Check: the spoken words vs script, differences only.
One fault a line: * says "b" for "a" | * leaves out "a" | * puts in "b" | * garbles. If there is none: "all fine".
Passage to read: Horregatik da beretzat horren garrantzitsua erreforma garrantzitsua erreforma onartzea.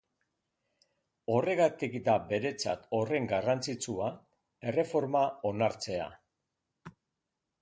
* leaves out "garrantzitsua erreforma"